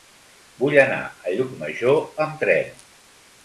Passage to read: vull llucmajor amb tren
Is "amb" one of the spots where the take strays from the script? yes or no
no